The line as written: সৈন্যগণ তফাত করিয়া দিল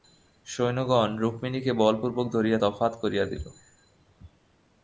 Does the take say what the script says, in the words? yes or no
no